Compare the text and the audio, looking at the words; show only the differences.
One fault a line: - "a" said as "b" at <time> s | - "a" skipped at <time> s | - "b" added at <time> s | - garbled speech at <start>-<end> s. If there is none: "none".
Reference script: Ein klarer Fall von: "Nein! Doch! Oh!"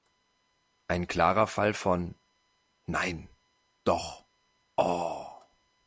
none